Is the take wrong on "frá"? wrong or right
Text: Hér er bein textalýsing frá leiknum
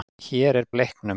wrong